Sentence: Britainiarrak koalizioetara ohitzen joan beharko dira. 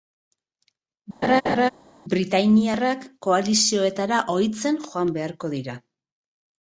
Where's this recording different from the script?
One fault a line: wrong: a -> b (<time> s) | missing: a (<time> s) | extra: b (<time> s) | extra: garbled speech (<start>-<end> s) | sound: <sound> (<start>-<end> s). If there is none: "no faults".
sound: laugh (1.2-1.7 s)